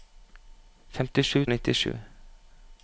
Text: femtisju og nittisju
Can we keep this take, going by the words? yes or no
yes